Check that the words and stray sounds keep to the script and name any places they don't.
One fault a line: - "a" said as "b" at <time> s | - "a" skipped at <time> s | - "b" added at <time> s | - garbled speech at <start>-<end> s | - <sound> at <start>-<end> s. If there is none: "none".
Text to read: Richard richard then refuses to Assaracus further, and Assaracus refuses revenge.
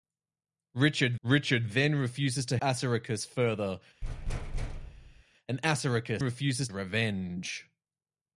- thud at 4.0-5.2 s